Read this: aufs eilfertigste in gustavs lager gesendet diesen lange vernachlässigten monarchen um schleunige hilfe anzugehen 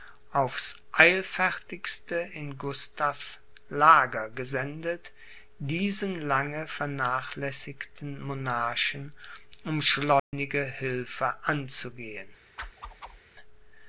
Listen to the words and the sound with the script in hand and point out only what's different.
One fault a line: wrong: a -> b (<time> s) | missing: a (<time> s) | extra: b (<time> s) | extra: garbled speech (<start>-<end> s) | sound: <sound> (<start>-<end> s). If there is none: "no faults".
sound: dropout (10.2-10.3 s)
sound: whoosh (12.6-13.2 s)